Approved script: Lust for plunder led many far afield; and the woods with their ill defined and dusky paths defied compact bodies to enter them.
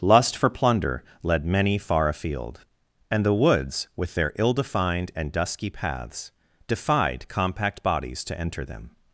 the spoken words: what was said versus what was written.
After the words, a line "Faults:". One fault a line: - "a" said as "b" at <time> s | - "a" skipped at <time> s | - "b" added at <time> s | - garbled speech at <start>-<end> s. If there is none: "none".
Lust for plunder led many far afield; and the woods with their ill defined and dusky paths defied compact bodies to enter them.
Faults:
none